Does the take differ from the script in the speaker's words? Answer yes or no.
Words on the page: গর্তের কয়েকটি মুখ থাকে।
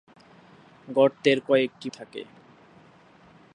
yes